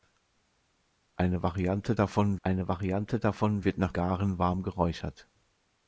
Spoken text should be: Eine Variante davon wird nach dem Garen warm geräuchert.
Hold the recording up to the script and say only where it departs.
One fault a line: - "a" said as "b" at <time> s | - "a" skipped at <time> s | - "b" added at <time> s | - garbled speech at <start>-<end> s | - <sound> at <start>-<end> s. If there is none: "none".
- "eine Variante davon" added at 2.4 s
- "dem" skipped at 3.9 s